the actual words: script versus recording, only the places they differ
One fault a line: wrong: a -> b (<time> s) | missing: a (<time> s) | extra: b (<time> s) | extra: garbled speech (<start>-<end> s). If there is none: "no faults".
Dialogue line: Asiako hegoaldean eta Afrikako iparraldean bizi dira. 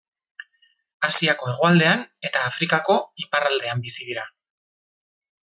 no faults